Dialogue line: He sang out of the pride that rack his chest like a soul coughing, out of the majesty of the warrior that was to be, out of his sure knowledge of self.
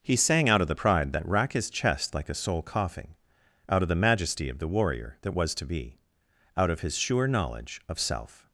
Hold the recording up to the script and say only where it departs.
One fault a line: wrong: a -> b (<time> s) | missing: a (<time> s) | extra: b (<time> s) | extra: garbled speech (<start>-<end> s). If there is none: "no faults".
no faults